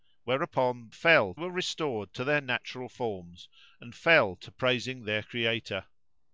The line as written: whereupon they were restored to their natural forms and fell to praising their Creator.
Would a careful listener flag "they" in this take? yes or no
yes